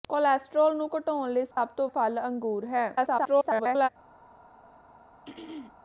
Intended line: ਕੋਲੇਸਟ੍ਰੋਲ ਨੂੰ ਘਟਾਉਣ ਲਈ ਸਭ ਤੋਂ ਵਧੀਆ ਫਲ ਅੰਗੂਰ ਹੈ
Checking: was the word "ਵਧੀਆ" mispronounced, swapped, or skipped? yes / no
yes